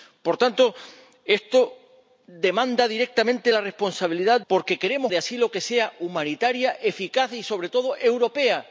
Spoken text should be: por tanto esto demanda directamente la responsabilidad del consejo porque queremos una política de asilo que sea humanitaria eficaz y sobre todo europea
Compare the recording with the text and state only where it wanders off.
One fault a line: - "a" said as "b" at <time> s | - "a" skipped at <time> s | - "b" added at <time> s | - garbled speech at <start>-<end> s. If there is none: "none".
- "del consejo" skipped at 4.4 s
- "una política" skipped at 5.1 s